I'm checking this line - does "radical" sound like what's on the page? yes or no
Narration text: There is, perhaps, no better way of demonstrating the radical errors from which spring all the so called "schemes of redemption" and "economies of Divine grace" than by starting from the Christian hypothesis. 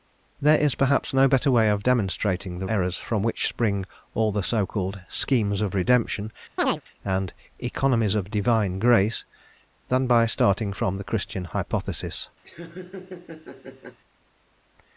no